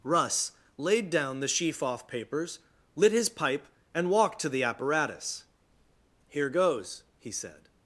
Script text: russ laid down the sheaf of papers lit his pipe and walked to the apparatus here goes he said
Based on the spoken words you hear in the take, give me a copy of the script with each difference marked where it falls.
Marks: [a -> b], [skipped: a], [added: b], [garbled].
russ laid down the sheaf [of -> off] papers lit his pipe and walked to the apparatus here goes he said